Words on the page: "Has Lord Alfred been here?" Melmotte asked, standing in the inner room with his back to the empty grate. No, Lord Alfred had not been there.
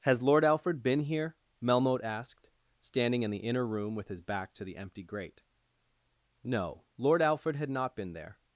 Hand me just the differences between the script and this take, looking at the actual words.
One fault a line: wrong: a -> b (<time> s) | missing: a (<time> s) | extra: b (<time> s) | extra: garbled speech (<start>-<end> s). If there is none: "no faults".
no faults